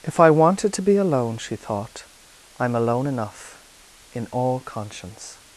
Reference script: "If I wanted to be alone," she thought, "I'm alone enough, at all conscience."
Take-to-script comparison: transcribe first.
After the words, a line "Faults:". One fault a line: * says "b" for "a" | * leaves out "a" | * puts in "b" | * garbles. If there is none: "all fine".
"If I wanted to be alone," she thought, "I'm alone enough, in all conscience."
Faults:
* says "in" for "at"